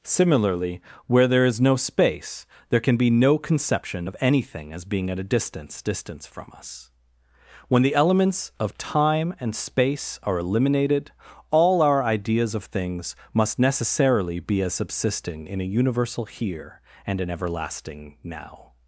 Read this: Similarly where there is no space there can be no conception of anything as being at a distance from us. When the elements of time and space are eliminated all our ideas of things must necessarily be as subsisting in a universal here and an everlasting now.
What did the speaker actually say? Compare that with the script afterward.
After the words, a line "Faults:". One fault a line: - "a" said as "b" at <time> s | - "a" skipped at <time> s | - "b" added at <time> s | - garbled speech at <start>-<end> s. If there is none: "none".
Similarly where there is no space there can be no conception of anything as being at a distance distance from us. When the elements of time and space are eliminated all our ideas of things must necessarily be as subsisting in a universal here and an everlasting now.
Faults:
- "distance" added at 5.8 s